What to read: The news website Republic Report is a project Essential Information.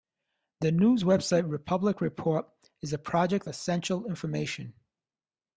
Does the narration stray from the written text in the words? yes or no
no